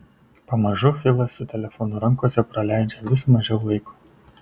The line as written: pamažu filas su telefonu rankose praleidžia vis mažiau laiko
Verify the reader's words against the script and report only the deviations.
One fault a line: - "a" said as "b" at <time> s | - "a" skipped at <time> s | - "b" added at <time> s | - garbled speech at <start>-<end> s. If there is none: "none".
none